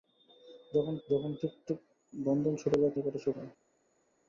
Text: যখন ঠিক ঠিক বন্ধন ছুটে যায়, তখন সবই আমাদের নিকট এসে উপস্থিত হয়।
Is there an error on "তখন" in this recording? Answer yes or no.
yes